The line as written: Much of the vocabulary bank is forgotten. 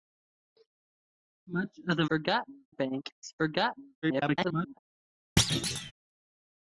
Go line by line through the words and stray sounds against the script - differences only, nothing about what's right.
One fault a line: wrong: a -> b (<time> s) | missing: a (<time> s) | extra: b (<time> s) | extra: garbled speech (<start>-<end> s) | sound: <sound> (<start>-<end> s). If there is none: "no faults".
wrong: vocabulary -> forgotten (2.1 s)
extra: garbled speech (4.0-4.8 s)
sound: thud (5.4-5.9 s)